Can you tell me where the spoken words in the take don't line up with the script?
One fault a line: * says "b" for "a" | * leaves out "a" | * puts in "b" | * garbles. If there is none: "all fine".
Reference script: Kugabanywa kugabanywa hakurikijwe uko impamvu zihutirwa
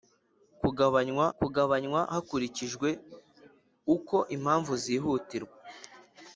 all fine